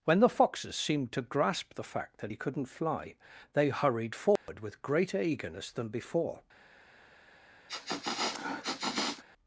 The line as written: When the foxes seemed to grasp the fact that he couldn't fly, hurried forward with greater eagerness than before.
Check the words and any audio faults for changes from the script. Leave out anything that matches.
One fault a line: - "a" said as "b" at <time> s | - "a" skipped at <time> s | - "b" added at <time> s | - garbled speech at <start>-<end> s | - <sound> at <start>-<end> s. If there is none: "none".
- "they" added at 3.5 s
- dropout at 4.4-4.5 s
- sniff at 7.7-9.2 s